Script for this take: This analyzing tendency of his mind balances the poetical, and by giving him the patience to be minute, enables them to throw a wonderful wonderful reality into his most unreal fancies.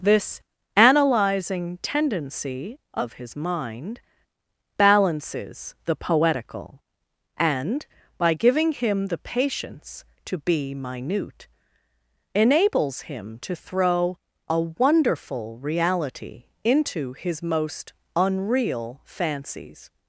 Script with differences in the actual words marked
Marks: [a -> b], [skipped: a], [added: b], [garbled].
This analyzing tendency of his mind balances the poetical, and by giving him the patience to be minute, enables [them -> him] to throw a wonderful [skipped: wonderful] reality into his most unreal fancies.